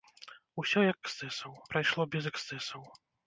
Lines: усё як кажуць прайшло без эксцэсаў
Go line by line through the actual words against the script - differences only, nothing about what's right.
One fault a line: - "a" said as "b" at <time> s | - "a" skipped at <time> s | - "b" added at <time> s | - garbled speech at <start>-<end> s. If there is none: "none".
- "кажуць" said as "эксцэсаў" at 1.1 s